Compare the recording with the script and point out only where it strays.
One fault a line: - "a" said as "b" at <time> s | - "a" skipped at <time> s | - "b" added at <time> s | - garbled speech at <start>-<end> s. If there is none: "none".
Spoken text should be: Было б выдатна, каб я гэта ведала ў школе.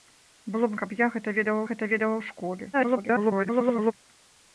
- "выдатна" skipped at 0.8 s
- "гэта ведала" added at 1.7 s
- garbled speech at 2.7-3.9 s